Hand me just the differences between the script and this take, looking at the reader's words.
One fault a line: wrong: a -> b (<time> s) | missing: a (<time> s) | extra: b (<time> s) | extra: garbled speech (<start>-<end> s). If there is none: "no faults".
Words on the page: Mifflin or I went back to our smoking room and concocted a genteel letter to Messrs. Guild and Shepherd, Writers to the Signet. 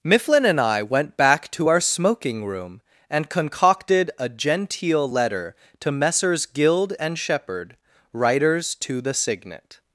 wrong: or -> and (0.5 s)